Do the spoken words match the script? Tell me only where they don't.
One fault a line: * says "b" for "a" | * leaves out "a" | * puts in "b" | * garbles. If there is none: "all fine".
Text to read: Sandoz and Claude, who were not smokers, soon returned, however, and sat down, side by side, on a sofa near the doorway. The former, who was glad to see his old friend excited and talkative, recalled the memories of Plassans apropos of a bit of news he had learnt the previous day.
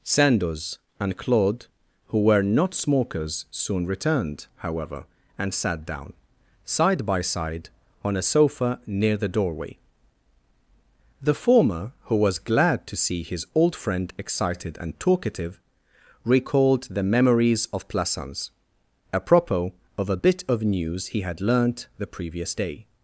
all fine